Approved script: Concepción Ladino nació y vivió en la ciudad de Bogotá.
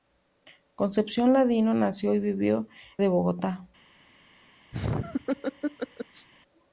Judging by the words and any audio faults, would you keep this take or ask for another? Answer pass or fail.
fail